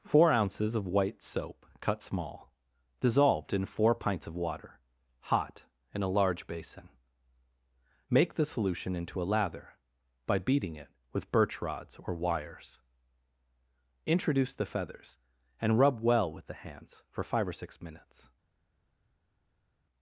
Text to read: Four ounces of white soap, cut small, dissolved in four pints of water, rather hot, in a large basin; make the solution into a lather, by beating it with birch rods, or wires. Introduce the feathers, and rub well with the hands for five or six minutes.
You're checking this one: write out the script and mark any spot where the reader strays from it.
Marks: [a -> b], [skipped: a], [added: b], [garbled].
Four ounces of white soap, cut small, dissolved in four pints of water, [skipped: rather] hot, in a large basin; make the solution into a lather, by beating it with birch rods, or wires. Introduce the feathers, and rub well with the hands for five or six minutes.